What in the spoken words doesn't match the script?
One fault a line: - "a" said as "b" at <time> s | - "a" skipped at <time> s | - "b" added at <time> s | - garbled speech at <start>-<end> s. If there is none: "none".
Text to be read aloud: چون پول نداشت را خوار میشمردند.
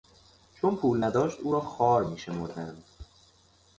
- "او" added at 1.4 s